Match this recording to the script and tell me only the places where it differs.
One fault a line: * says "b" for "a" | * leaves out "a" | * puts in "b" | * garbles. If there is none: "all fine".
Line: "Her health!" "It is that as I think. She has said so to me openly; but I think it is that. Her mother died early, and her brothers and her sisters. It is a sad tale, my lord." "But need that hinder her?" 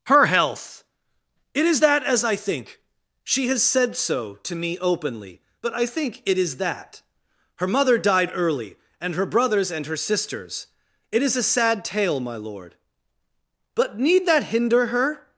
all fine